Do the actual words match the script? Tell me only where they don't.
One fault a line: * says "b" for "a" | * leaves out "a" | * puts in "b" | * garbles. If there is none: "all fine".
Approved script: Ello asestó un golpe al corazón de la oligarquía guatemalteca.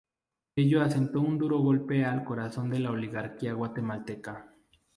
* puts in "duro"